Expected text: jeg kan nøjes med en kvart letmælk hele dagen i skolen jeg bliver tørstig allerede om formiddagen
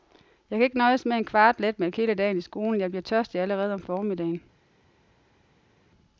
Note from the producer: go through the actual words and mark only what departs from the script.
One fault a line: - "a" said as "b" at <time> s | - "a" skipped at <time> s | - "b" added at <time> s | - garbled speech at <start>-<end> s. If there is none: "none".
- "ikke" added at 0.6 s